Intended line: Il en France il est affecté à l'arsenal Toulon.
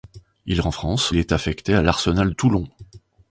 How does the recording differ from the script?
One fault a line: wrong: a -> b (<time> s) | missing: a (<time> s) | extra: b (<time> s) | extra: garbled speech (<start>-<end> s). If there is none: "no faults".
no faults